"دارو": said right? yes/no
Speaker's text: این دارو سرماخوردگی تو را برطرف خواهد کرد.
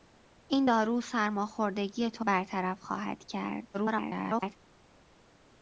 yes